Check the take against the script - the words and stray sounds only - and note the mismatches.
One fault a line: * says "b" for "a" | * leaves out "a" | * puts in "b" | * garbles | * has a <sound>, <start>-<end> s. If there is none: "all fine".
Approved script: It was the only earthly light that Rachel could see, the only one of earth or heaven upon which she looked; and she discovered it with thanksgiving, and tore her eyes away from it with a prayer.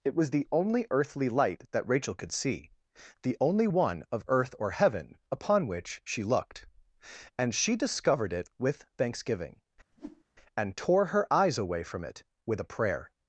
* has a whoosh, 9.9-10.2 s